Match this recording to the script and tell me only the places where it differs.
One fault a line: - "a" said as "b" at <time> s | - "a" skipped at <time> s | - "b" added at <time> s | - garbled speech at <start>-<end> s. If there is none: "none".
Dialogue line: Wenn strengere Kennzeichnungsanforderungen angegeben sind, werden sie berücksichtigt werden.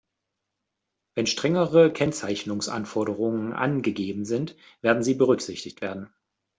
none